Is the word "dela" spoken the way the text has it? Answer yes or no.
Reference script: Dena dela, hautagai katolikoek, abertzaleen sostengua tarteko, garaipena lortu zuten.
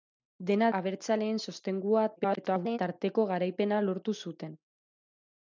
no